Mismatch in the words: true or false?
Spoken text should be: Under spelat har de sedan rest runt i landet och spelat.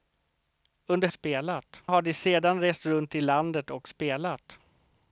false